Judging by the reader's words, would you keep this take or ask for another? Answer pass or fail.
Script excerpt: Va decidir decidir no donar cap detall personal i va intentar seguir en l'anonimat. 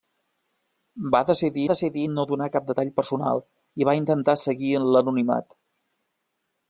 pass